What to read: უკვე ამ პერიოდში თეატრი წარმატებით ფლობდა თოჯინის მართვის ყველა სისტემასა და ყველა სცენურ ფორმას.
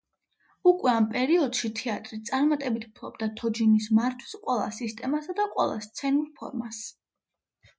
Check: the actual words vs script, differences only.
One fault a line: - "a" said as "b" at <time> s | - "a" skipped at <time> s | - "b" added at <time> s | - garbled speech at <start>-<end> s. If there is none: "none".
none